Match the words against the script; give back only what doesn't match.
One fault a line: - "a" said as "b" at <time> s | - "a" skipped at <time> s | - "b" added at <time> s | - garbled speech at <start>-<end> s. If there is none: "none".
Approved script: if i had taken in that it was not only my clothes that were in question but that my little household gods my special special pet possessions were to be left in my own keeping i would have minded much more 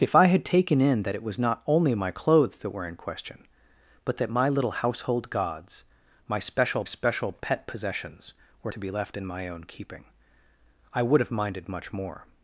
none